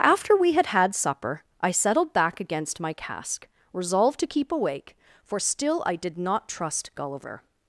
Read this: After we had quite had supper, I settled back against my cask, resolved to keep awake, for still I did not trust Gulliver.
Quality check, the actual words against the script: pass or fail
fail